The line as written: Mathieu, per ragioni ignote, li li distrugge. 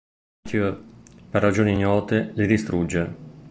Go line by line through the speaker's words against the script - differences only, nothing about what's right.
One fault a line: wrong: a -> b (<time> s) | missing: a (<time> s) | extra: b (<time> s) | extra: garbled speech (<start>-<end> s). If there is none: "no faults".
missing: li (2.5 s)